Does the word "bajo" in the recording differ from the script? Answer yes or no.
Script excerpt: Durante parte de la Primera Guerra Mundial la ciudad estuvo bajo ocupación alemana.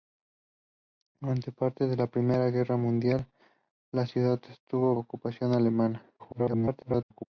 yes